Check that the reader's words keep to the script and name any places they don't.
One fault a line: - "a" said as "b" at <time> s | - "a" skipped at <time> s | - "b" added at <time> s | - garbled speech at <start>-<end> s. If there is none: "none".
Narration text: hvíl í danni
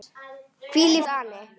none